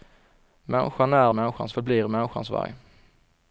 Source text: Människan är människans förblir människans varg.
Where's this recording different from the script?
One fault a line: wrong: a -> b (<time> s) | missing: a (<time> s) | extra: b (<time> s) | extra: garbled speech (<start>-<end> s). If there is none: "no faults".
no faults